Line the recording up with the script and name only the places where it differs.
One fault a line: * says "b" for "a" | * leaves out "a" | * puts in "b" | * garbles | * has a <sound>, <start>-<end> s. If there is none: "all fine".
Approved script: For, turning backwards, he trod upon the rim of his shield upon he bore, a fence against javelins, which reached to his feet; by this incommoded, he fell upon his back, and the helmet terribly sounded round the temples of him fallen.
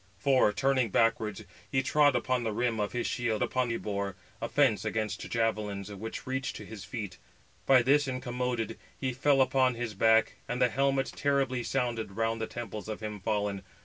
all fine